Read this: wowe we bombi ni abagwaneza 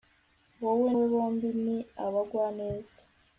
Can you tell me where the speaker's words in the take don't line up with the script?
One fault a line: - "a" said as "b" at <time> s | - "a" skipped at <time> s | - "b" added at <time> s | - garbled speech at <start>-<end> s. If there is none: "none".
none